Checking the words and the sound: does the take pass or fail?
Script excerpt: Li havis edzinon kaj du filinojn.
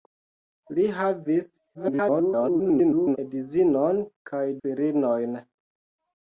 fail